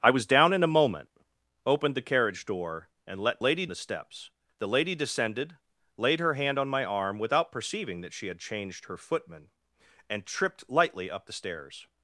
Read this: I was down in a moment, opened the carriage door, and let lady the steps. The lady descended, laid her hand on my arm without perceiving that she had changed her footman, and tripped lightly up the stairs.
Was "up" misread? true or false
false